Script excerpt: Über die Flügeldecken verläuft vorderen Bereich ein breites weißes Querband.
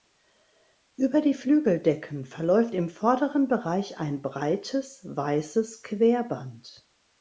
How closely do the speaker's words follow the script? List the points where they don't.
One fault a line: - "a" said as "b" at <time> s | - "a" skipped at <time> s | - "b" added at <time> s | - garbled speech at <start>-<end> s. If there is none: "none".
- "im" added at 2.7 s